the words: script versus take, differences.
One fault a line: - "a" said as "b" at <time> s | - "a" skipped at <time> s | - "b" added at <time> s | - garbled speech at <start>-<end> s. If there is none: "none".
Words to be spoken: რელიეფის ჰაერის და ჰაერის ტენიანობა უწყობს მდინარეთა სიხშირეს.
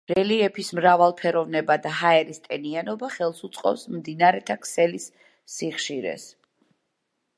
- "ჰაერის" said as "მრავალფეროვნება" at 0.8 s
- "ხელს" added at 3.1 s
- "ქსელის" added at 4.7 s